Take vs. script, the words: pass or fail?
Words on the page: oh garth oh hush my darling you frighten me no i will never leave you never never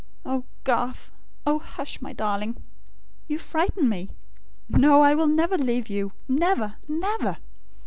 pass